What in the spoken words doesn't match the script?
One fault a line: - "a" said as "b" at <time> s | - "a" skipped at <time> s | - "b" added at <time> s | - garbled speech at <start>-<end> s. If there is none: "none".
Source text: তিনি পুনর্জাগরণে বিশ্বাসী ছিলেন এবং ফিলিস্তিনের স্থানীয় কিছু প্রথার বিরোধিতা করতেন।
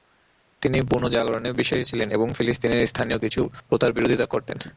none